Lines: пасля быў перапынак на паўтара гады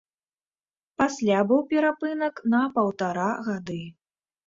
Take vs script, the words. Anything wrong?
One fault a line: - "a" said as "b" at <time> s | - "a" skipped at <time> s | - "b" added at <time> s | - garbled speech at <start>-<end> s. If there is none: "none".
none